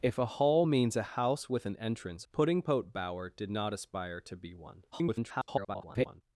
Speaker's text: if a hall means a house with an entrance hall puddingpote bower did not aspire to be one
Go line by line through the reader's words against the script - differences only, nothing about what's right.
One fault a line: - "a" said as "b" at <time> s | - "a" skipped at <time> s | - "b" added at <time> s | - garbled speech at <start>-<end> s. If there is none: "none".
- "hall" skipped at 2.3 s
- garbled speech at 4.9-6.2 s